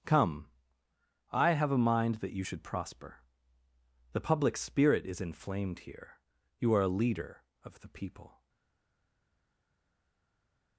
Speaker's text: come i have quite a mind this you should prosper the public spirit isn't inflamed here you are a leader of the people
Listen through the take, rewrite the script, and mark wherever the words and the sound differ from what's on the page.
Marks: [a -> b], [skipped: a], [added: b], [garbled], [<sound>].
come i have [skipped: quite] a mind [this -> that] you should prosper the public spirit [isn't -> is] inflamed here you are a leader of the people